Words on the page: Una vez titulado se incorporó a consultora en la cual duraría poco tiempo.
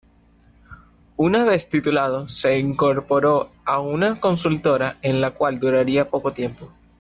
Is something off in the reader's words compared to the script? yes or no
yes